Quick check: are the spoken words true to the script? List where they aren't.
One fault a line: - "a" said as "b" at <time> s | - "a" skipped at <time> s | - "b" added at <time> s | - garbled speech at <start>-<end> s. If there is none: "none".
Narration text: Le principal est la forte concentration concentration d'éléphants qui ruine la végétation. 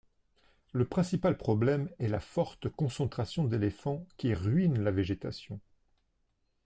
- "problème" added at 1.4 s
- "concentration" skipped at 3.4 s